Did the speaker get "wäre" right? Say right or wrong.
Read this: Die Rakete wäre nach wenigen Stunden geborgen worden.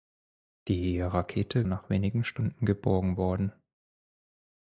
wrong